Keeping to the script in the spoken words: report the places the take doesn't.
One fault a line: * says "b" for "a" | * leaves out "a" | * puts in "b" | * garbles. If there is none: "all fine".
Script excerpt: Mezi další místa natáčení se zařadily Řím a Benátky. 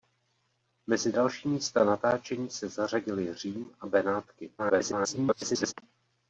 * garbles